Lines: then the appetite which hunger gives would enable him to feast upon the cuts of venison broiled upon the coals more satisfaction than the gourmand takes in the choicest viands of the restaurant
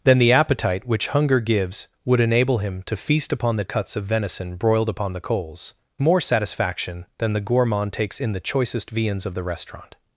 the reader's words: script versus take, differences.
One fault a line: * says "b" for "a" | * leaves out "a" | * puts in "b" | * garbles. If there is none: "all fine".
all fine